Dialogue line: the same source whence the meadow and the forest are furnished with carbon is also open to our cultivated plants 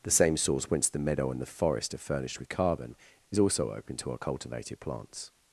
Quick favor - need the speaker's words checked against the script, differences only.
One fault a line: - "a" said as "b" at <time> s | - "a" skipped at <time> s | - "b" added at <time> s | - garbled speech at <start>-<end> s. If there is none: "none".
none